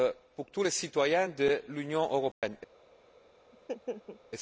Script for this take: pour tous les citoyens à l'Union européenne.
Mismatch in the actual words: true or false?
true